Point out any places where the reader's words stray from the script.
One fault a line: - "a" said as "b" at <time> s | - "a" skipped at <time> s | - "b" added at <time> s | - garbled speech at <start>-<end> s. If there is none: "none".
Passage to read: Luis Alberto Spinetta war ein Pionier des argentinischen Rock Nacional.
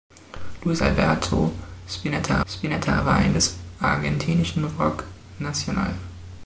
- "Spinetta" added at 2.5 s
- "Pionier" skipped at 3.4 s